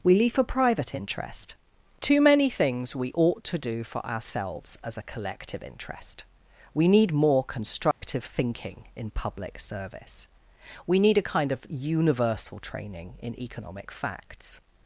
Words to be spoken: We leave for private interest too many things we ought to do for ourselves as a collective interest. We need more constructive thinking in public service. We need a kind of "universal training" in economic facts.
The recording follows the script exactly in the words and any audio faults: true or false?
false